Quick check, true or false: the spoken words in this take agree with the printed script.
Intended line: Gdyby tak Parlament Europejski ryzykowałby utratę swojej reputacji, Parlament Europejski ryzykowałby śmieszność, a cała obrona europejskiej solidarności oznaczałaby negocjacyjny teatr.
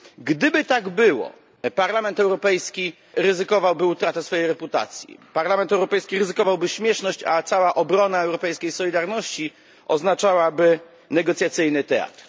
false